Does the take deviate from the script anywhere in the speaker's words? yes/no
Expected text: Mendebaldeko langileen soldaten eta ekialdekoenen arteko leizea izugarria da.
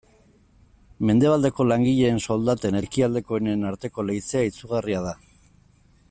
yes